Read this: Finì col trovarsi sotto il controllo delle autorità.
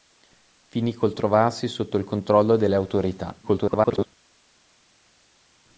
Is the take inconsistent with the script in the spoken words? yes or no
yes